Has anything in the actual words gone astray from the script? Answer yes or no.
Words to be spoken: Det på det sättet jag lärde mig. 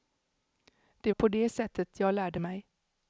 no